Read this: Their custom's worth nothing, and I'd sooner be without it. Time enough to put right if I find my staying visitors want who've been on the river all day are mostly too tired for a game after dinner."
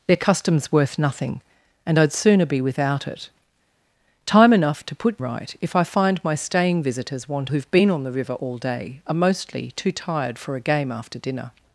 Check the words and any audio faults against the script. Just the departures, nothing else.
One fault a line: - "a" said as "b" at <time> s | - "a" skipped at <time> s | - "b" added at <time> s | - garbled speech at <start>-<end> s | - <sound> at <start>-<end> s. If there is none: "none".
none